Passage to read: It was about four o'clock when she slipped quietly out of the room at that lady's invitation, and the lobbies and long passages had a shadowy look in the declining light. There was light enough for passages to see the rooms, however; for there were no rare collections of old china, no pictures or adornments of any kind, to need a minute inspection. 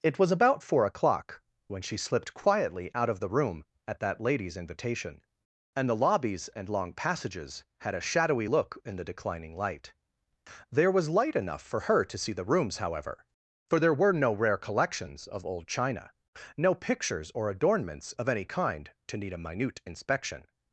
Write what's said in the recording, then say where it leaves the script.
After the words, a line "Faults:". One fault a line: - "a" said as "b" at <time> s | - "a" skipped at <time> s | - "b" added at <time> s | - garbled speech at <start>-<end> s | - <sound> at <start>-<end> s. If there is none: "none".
It was about four o'clock when she slipped quietly out of the room at that lady's invitation, and the lobbies and long passages had a shadowy look in the declining light. There was light enough for her to see the rooms, however; for there were no rare collections of old china, no pictures or adornments of any kind, to need a minute inspection.
Faults:
- "passages" said as "her" at 11.8 s